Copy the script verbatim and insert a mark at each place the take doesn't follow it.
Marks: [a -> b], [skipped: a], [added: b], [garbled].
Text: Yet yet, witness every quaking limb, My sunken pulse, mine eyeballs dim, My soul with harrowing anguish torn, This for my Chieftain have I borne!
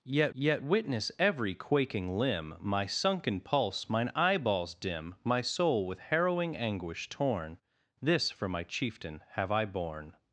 Yet yet, witness every quaking limb, My sunken pulse, mine eyeballs dim, My soul with harrowing anguish torn, This for my Chieftain have I borne!